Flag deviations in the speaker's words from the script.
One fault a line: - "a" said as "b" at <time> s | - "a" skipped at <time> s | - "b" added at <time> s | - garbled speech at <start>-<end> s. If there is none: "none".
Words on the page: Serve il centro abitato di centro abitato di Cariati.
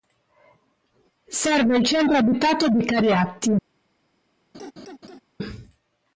- "centro abitato di" skipped at 2.8 s